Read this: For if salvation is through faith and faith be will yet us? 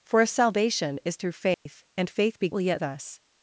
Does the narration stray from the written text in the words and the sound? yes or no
yes